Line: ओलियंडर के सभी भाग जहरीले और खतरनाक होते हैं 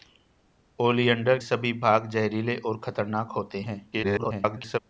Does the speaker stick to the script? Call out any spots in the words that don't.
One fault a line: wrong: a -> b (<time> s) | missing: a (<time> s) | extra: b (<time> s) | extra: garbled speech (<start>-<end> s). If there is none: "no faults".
missing: के (1.4 s)
extra: garbled speech (3.9-4.8 s)